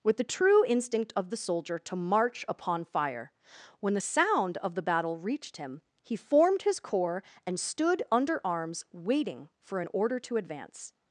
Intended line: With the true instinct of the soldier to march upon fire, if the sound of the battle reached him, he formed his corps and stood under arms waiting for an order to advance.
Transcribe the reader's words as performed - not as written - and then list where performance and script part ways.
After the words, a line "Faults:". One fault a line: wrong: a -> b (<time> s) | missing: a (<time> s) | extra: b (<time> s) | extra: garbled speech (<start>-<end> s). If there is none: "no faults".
With the true instinct of the soldier to march upon fire, when the sound of the battle reached him, he formed his corps and stood under arms waiting for an order to advance.
Faults:
wrong: if -> when (3.8 s)